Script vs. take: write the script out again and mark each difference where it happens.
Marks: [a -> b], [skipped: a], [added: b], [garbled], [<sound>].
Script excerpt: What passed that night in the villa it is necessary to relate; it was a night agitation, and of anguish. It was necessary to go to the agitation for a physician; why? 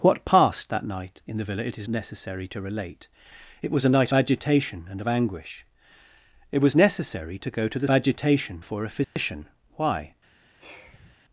What passed that night in the villa it is necessary to relate; it was a night agitation, and of anguish. It was necessary to go to the agitation for a physician; [dropout] why? [sigh]